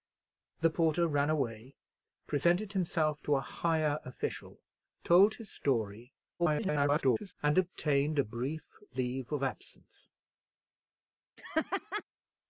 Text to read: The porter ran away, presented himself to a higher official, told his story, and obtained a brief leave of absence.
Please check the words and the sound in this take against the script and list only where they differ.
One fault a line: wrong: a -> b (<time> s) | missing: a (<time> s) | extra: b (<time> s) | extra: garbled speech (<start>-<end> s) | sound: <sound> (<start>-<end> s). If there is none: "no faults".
extra: garbled speech (6.4-7.3 s)
sound: laugh (11.4-12.0 s)